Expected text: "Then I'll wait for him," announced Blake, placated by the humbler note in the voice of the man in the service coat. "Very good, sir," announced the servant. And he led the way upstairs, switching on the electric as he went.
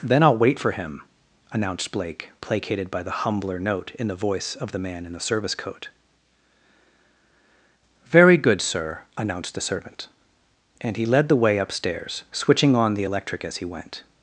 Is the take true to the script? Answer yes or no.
yes